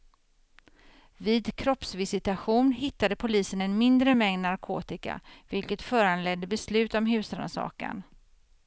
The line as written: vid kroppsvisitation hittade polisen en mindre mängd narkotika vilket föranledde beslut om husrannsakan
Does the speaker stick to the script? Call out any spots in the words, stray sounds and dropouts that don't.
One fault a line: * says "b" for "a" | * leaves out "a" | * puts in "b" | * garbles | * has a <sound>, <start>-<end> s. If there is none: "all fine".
all fine